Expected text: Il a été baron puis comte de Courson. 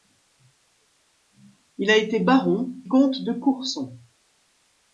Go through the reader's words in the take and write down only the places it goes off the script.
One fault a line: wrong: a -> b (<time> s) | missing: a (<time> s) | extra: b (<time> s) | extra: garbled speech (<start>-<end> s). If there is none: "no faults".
missing: puis (2.7 s)